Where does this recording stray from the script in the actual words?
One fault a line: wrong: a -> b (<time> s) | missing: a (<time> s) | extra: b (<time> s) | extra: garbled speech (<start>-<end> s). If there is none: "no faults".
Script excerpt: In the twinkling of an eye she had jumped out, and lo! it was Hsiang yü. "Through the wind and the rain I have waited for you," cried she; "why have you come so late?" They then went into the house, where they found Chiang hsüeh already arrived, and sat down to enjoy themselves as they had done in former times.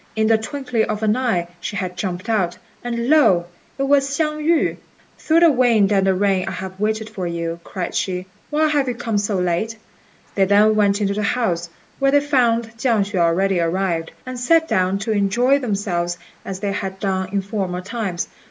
no faults